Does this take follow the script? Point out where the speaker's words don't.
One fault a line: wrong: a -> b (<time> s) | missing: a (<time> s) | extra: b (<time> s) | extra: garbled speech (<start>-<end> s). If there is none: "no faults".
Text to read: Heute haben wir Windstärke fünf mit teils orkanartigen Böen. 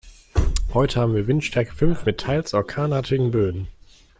no faults